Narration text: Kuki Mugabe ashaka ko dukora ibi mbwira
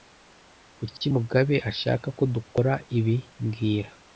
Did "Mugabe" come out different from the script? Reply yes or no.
no